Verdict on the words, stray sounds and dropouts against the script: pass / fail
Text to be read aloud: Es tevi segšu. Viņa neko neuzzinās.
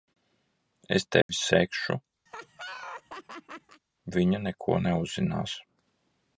fail